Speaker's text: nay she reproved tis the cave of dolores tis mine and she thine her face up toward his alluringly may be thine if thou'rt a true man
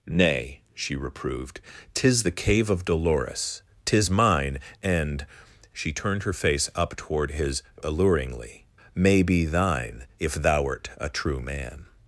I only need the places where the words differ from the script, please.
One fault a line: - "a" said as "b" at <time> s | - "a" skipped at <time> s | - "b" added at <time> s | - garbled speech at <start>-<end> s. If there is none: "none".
- "thine" said as "turned" at 5.9 s